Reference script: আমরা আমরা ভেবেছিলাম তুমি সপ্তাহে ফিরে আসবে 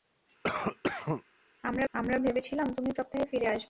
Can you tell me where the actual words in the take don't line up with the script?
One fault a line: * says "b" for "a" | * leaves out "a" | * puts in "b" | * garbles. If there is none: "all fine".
all fine